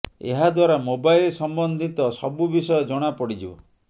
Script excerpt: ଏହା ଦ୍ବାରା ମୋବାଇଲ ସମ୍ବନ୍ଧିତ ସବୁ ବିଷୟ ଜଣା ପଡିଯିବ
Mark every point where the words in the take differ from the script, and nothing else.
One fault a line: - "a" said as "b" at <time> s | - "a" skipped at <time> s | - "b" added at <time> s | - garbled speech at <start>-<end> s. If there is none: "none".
none